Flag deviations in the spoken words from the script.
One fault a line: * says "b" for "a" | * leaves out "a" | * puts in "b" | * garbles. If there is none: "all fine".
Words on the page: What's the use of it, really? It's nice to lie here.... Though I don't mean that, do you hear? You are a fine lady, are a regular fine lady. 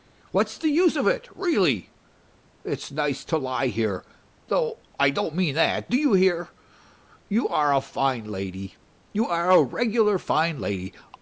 * puts in "you"